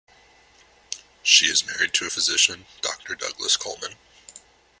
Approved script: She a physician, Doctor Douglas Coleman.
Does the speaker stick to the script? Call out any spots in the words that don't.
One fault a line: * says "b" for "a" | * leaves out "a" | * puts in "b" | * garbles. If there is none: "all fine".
* puts in "is married to"